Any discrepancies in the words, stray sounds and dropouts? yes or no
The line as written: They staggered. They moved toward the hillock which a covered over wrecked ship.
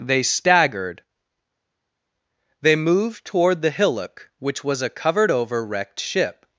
yes